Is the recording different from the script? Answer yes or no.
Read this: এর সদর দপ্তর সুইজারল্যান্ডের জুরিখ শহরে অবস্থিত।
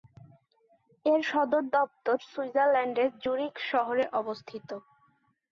no